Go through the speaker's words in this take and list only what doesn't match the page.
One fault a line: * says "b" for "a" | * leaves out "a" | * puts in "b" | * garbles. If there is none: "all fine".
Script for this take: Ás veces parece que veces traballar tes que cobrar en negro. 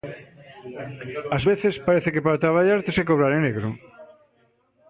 * says "para" for "veces"